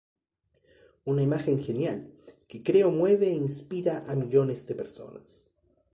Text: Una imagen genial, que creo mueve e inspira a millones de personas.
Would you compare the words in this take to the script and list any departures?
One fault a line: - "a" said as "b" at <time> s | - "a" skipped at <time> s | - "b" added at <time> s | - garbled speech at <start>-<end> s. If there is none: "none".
none